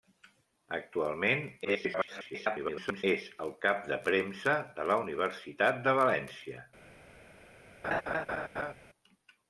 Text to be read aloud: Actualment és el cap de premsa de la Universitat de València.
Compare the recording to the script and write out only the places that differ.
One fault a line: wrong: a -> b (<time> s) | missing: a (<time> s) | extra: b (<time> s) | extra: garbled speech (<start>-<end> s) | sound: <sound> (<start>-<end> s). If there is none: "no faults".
extra: garbled speech (1.6-3.0 s)
sound: laugh (7.8-8.7 s)